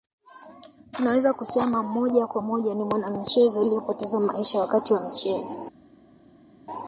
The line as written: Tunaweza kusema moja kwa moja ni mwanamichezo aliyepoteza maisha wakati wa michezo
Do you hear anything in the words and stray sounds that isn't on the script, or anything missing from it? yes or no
no